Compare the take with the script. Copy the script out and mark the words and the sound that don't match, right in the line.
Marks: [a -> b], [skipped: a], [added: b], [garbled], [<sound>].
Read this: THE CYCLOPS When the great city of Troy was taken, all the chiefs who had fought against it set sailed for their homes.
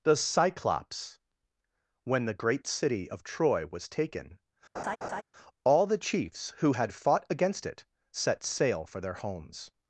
THE CYCLOPS When the great city of Troy was taken, [laugh] all the chiefs who had fought against it set [sailed -> sail] for their homes.